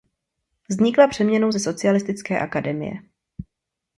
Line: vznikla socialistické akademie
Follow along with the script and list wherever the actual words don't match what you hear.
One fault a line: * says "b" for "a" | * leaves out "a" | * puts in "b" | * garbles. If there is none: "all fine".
* puts in "přeměnou ze"